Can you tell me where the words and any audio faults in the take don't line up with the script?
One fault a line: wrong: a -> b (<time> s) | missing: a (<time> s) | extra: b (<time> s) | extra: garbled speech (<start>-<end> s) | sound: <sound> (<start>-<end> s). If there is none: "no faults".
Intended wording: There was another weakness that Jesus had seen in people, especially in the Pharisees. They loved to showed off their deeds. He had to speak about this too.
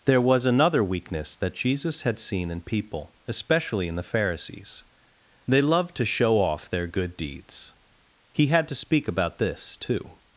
wrong: showed -> show (6.1 s)
extra: good (6.9 s)